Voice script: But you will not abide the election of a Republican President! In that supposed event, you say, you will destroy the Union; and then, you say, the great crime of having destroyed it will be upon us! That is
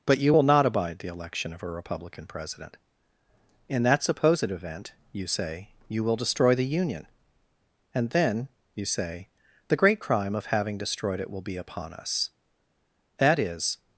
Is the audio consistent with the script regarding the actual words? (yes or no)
yes